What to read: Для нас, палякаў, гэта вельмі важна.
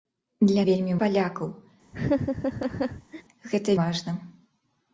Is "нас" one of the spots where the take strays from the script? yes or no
yes